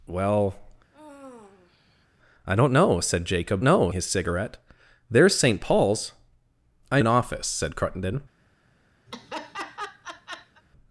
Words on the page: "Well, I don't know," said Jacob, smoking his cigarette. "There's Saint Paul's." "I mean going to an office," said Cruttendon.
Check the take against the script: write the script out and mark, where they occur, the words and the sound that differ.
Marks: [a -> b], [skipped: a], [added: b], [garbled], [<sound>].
"Well, [sigh] I don't know," said Jacob, [smoking -> know] his cigarette. "There's Saint Paul's." "I [skipped: mean going to] an office," said Cruttendon. [laugh]